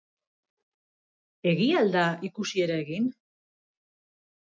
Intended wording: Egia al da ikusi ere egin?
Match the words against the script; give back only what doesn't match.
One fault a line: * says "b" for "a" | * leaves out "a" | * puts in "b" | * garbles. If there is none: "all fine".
all fine